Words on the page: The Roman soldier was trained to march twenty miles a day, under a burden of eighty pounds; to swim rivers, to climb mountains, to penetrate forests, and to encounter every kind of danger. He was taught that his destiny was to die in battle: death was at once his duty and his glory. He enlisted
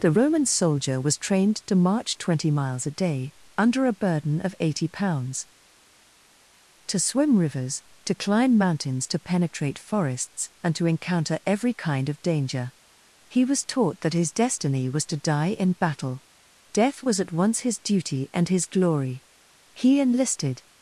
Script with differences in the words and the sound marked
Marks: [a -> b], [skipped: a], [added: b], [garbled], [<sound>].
The Roman soldier was trained to march twenty miles a day, under a burden of eighty pounds; to swim rivers, to climb mountains, to penetrate forests, and to encounter every kind of danger. He was taught that his destiny was to die in battle: death was at once his duty and his glory. He enlisted